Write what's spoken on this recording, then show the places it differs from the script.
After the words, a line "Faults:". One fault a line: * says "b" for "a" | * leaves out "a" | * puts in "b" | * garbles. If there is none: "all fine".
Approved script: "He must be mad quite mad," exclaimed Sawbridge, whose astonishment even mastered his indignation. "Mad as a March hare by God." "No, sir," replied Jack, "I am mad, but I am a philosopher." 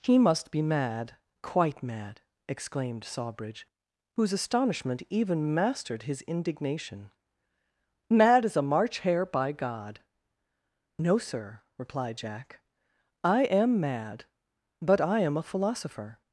"He must be mad quite mad," exclaimed Sawbridge, whose astonishment even mastered his indignation. "Mad as a March hare by God." "No, sir," replied Jack, "I am mad, but I am a philosopher."
Faults:
all fine